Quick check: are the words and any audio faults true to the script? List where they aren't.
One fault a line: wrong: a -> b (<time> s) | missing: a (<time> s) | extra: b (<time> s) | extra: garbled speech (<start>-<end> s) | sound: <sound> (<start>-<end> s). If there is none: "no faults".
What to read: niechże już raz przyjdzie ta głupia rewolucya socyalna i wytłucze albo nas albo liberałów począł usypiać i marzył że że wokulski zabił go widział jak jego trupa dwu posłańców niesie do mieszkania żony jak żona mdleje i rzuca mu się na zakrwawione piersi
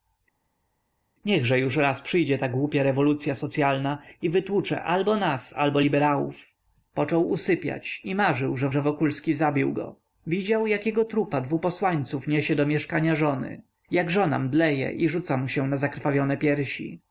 no faults